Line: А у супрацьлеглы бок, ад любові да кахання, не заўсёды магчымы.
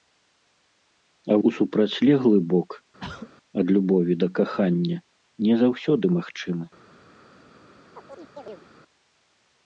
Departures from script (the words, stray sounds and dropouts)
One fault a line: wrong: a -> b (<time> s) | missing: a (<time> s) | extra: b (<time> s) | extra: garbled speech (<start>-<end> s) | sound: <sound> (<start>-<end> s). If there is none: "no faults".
sound: throat clearing (3.0-3.3 s)
sound: chirp (8.0-8.7 s)